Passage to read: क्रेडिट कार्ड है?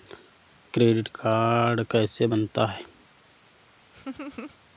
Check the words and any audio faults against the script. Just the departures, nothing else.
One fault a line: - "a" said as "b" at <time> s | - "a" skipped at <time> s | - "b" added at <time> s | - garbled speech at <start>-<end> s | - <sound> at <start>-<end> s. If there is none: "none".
- "कैसे बनता" added at 1.8 s
- laugh at 3.9-4.6 s